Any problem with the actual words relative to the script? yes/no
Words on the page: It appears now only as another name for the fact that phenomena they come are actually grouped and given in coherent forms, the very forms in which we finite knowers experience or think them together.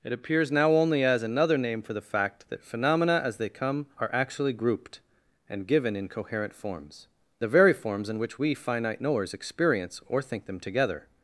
yes